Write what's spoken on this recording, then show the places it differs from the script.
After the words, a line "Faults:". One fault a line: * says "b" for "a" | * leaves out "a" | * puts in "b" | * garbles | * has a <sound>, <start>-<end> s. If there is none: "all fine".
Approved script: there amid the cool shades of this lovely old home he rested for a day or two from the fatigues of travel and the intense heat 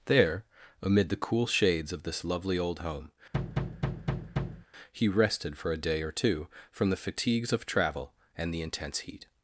there amid the cool shades of this lovely old home he rested for a day or two from the fatigues of travel and the intense heat
Faults:
* has a thud, 3.3-4.7 s